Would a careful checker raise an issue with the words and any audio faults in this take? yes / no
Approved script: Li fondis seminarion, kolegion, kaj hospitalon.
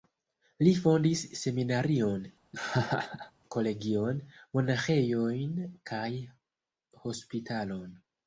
yes